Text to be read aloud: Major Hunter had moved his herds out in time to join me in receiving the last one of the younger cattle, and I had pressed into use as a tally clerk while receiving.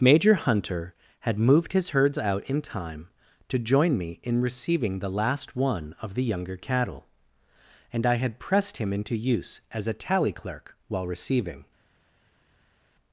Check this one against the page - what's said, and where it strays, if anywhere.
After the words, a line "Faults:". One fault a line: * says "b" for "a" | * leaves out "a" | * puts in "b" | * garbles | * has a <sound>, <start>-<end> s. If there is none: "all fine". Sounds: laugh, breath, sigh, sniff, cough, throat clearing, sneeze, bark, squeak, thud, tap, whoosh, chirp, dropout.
Major Hunter had moved his herds out in time to join me in receiving the last one of the younger cattle, and I had pressed him into use as a tally clerk while receiving.
Faults:
* puts in "him"